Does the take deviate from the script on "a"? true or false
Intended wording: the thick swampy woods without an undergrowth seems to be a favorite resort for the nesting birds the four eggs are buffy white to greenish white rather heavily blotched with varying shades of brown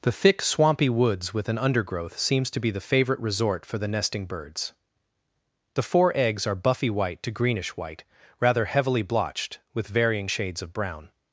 true